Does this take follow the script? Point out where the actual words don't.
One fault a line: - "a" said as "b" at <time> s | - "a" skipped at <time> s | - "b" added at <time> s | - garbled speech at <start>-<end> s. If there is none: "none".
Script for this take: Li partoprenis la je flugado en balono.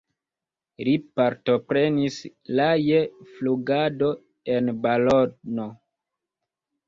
none